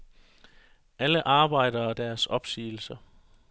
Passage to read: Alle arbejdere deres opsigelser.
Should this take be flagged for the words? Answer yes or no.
no